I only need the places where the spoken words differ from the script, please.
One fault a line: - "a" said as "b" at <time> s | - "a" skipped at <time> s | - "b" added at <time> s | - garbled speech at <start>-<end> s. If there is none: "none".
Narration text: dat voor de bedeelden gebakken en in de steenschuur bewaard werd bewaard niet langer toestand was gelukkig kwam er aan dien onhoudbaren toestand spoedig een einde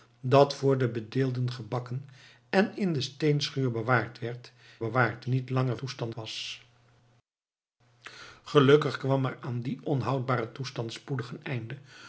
none